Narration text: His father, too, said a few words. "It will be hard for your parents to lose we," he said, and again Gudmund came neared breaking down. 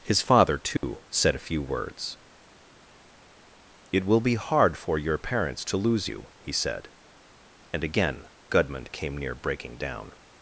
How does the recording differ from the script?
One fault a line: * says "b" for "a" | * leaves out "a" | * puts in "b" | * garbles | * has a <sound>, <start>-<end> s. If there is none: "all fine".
* has a dropout, 0.8-0.8 s
* says "you" for "we"
* says "near" for "neared"